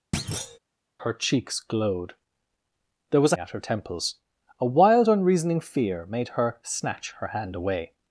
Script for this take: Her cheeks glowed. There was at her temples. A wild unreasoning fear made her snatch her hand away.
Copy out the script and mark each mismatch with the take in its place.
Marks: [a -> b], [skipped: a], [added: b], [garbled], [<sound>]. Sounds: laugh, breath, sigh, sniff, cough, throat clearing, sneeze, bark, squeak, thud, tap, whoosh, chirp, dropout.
[thud] Her cheeks glowed. There was at her temples. A wild unreasoning fear made her snatch her hand away.